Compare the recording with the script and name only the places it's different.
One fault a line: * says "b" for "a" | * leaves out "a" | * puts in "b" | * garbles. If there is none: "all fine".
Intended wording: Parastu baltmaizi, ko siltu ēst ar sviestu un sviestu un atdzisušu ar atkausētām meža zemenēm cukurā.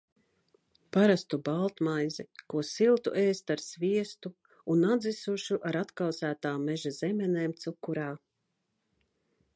* leaves out "sviestu un"